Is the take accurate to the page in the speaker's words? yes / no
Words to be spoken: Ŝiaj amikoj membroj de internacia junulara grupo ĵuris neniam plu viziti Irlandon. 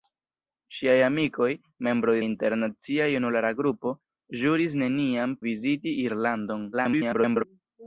no